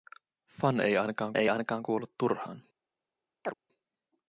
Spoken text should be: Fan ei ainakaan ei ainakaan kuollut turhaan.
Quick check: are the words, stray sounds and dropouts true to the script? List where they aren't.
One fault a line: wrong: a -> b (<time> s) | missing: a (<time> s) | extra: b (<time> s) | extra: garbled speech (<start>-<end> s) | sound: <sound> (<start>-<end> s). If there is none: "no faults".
sound: chirp (3.4-3.5 s)